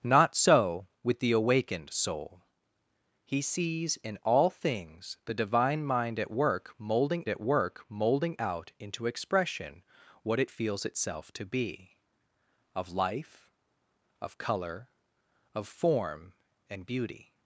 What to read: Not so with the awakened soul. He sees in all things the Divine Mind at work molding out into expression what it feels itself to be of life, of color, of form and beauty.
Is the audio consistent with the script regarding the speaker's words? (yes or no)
no